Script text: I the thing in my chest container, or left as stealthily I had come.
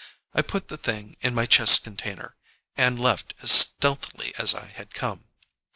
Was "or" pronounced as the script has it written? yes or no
no